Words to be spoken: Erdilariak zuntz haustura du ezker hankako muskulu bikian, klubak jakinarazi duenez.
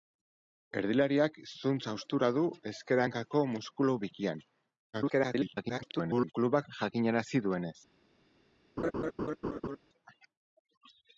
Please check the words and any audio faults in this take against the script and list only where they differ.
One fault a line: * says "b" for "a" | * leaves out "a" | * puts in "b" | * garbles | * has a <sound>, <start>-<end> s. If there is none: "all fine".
* garbles
* has a laugh, 8.8-9.8 s